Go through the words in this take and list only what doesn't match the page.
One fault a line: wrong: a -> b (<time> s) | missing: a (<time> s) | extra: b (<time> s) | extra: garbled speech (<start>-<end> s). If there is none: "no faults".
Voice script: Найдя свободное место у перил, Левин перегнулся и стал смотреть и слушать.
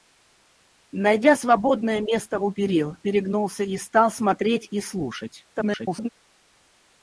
missing: Левин (3.0 s)
extra: garbled speech (5.5-6.1 s)